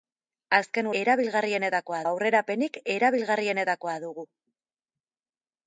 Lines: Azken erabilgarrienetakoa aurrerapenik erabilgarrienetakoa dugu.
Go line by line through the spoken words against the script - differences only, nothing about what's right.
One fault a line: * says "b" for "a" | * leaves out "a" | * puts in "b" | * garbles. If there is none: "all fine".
all fine